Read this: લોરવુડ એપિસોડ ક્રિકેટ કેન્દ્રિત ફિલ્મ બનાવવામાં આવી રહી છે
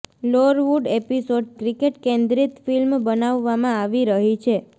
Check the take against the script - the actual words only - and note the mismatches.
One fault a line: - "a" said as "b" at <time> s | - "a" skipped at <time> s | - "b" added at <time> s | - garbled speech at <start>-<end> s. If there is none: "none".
none